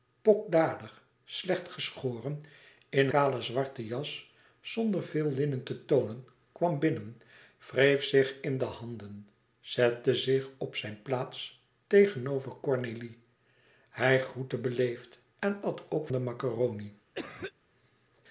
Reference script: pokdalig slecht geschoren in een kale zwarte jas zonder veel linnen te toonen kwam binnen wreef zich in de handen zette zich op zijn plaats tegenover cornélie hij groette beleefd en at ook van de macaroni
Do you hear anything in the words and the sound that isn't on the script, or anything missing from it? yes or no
yes